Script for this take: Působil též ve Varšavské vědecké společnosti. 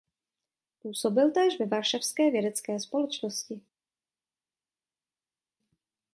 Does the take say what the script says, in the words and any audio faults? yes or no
yes